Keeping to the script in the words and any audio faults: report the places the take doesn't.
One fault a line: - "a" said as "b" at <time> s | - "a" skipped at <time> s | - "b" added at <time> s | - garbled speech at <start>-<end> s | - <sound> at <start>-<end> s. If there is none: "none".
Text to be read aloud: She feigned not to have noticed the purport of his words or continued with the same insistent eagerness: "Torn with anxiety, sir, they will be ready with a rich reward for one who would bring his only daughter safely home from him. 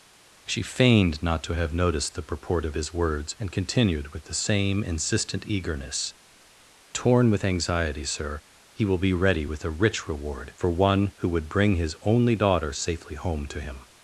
- "or" said as "and" at 3.4 s
- "they" said as "he" at 8.7 s
- "from" said as "to" at 13.5 s